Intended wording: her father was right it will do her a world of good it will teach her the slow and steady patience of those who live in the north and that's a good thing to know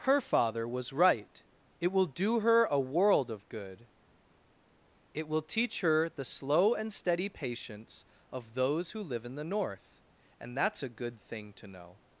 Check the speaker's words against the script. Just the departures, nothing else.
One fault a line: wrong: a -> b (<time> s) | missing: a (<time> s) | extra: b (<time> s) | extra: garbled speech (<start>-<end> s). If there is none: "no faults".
no faults